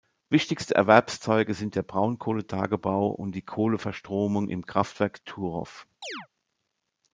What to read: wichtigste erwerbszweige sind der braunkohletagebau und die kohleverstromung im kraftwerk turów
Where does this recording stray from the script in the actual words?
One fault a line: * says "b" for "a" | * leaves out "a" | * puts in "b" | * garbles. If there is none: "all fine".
all fine